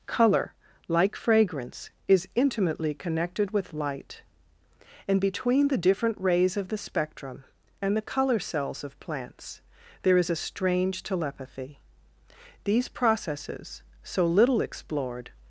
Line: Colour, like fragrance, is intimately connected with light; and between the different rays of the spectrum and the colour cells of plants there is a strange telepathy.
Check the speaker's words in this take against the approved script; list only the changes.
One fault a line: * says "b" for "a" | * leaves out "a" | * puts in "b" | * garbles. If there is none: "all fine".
* puts in "These processes so little explored"